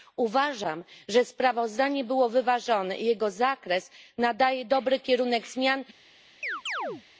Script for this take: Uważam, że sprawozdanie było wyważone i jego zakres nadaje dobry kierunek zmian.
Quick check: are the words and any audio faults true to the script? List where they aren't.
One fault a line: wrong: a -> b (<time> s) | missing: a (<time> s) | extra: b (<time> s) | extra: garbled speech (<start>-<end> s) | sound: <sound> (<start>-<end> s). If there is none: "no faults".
sound: chirp (6.4-7.0 s)